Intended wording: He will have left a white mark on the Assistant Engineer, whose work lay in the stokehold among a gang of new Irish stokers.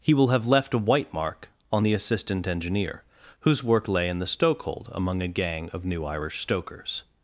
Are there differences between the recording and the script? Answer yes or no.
no